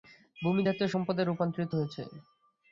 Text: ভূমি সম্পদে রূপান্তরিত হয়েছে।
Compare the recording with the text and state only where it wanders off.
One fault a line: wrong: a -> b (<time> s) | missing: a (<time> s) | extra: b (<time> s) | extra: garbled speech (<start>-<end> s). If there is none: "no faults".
extra: জাতীয় (0.7 s)